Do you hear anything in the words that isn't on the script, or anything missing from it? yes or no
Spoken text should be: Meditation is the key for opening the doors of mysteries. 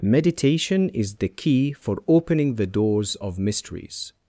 no